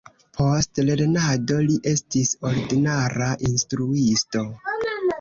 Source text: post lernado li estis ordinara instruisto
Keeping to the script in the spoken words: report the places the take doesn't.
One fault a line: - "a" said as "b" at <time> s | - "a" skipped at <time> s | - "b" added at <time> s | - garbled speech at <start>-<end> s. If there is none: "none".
none